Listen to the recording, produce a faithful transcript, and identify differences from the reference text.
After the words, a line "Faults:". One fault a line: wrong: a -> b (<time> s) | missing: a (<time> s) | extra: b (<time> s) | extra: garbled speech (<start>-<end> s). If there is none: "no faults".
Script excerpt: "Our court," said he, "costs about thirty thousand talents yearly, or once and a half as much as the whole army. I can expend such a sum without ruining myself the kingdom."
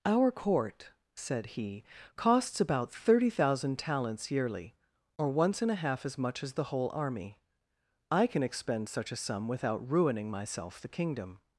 "Our court," said he, "costs about thirty thousand talents yearly, or once and a half as much as the whole army. I can expend such a sum without ruining myself the kingdom."
Faults:
no faults